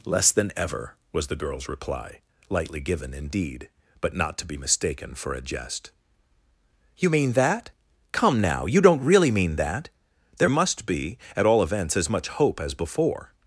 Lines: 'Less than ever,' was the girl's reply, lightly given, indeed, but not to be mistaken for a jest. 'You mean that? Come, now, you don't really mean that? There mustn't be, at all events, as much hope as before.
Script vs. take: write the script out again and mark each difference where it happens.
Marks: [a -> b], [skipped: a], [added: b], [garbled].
'Less than ever,' was the girl's reply, lightly given, indeed, but not to be mistaken for a jest. 'You mean that? Come, now, you don't really mean that? There [mustn't -> must] be, at all events, as much hope as before.